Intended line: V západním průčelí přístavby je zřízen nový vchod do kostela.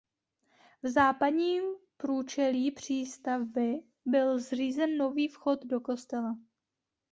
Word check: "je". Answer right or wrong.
wrong